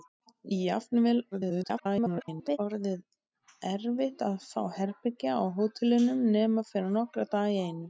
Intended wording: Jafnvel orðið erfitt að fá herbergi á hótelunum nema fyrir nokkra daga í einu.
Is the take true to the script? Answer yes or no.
no